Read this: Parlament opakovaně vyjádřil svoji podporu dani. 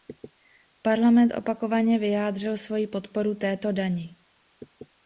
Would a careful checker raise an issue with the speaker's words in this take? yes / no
yes